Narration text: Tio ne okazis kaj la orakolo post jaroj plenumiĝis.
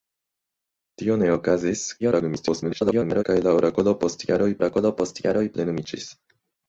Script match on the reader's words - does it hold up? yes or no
no